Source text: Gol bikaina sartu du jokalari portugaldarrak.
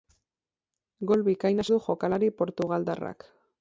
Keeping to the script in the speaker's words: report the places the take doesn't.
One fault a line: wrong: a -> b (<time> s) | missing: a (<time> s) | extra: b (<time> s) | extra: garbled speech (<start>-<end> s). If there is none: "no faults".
missing: sartu (1.6 s)